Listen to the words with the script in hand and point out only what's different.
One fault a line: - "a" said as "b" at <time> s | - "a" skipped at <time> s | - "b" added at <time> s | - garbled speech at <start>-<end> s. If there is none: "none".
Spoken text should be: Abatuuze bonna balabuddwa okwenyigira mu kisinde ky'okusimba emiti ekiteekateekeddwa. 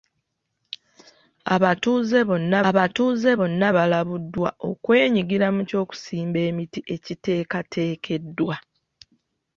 - "abatuuze bonna" added at 2.7 s
- "kisinde" skipped at 5.6 s